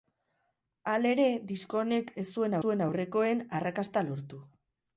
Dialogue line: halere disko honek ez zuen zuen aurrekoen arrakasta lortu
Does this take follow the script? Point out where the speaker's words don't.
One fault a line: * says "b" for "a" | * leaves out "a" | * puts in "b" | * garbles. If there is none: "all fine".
all fine